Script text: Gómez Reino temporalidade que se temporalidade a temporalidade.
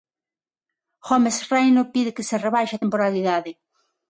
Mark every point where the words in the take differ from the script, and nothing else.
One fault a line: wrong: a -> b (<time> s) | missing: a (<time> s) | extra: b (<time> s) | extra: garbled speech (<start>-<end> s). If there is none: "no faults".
wrong: temporalidade -> pide (1.9 s)
wrong: temporalidade -> rebaixe (2.5 s)